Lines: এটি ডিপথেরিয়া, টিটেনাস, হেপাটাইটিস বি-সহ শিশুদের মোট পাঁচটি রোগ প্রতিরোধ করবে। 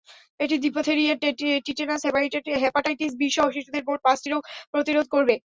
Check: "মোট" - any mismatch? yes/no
no